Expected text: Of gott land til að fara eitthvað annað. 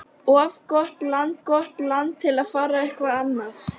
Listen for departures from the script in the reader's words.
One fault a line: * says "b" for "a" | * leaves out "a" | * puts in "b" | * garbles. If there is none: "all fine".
* puts in "gott land"